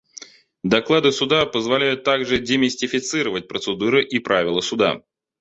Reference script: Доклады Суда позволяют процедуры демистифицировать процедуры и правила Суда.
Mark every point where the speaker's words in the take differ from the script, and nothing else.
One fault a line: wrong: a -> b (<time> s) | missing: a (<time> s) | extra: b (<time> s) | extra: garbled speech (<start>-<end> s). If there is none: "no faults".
wrong: процедуры -> также (2.0 s)